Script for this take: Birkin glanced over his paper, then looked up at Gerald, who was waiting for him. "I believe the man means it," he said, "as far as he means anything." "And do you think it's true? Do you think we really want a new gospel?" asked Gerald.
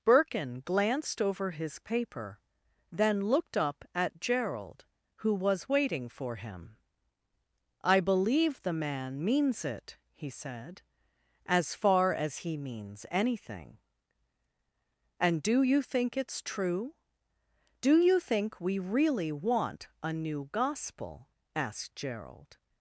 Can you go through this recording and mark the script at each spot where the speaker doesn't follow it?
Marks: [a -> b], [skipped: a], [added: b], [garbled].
Birkin glanced over his paper, then looked up at Gerald, who was waiting for him. "I believe the man means it," he said, "as far as he means anything." "And do you think it's true? Do you think we really want a new gospel?" asked Gerald.